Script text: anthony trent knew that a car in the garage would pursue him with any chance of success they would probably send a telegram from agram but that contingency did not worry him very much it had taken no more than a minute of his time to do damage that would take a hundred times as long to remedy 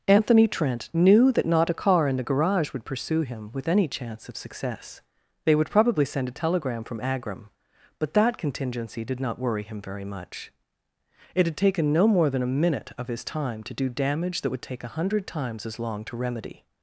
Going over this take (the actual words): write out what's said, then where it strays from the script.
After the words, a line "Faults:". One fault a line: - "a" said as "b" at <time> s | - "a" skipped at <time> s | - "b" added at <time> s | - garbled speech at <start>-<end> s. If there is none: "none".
anthony trent knew that not a car in the garage would pursue him with any chance of success they would probably send a telegram from agram but that contingency did not worry him very much it had taken no more than a minute of his time to do damage that would take a hundred times as long to remedy
Faults:
- "not" added at 1.4 s